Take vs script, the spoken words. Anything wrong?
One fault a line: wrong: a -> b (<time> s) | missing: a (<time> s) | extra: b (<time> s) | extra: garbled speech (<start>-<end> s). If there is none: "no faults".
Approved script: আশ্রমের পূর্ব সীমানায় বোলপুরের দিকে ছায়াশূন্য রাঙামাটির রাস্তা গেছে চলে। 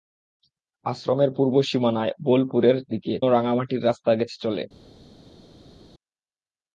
missing: ছায়াশূন্য (3.1 s)